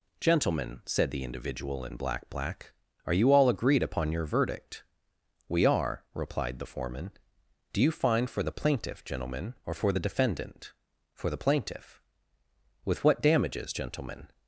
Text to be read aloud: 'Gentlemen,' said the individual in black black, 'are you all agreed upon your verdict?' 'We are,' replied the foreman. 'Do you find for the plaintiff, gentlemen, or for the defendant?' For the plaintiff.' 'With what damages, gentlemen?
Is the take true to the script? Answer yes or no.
yes